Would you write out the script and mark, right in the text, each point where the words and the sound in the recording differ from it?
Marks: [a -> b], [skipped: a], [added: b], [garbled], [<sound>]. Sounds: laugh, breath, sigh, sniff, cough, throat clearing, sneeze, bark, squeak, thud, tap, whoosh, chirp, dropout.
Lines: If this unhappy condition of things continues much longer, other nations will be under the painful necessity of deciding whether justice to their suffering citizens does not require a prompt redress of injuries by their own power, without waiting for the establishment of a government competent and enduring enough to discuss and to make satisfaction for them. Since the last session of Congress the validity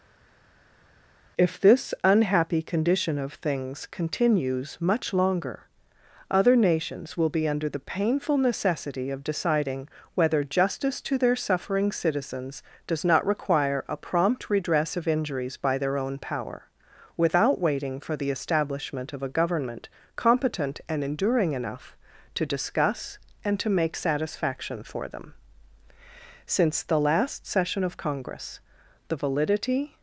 If this unhappy condition of things continues much longer, other nations will be under the painful necessity of deciding whether justice to their suffering citizens does not require a prompt redress of injuries by their own power, without waiting for the establishment of a government competent and enduring enough to discuss and to make satisfaction for them. Since the last session of Congress the validity